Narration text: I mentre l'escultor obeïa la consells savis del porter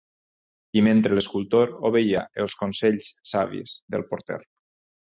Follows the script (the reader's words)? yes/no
no